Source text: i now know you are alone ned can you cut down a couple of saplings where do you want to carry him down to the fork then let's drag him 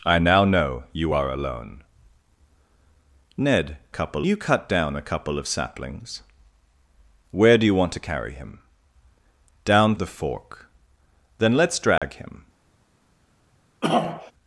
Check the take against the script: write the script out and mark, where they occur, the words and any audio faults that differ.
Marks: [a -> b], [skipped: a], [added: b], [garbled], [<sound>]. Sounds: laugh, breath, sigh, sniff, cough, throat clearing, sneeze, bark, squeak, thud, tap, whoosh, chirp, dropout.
i now know you are alone ned [can -> couple] you cut down a couple of saplings where do you want to carry him down [skipped: to] the fork then let's drag [dropout] him [throat clearing]